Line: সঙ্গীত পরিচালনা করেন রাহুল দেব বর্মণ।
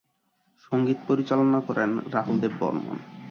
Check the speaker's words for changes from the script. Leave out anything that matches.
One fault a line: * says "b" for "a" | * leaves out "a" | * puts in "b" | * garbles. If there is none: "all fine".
all fine